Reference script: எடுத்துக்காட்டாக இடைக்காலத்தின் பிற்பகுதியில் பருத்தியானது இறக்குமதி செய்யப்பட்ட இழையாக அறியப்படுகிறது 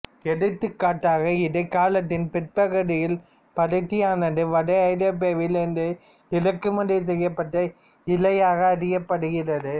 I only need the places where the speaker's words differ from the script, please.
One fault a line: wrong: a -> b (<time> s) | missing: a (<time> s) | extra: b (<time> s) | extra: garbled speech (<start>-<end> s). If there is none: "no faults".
extra: வட ஐரோப்பாவில் இருந்து (4.5 s)